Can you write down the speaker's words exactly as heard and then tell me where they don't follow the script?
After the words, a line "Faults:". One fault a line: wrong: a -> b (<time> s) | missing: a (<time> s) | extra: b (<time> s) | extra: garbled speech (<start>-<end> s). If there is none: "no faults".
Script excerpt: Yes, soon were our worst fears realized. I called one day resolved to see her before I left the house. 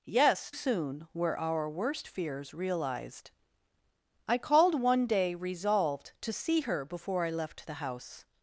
Yes, soon were our worst fears realized. I called one day resolved to see her before I left the house.
Faults:
no faults